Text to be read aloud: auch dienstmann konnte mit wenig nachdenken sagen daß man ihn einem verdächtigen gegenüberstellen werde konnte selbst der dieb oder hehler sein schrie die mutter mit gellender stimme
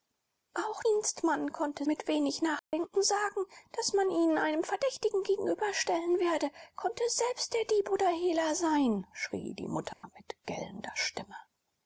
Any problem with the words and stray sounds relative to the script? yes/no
yes